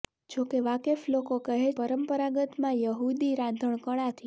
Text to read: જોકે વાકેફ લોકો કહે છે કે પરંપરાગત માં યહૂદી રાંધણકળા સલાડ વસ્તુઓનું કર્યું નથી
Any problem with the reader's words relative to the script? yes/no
yes